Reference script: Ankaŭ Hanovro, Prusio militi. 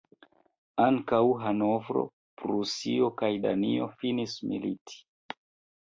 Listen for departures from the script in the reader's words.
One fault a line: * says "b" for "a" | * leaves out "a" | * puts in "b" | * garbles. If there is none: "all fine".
* puts in "kaj Danio finis"